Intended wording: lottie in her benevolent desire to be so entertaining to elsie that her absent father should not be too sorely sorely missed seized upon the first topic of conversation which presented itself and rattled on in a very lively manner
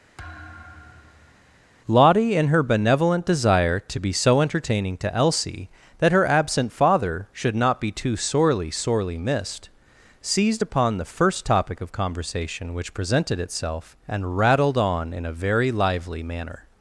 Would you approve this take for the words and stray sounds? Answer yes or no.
no